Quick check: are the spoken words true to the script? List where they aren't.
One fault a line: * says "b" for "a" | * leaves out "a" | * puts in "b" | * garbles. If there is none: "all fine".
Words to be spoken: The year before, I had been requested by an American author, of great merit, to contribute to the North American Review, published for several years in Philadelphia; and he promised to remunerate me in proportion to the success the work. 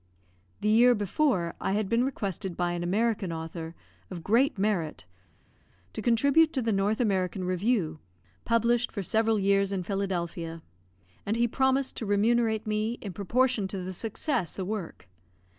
all fine